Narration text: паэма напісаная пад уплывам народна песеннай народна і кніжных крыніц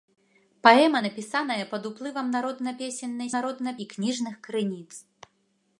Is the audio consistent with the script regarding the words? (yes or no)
yes